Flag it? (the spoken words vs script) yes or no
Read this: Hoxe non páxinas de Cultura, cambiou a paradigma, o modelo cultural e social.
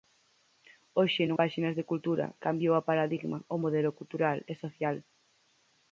no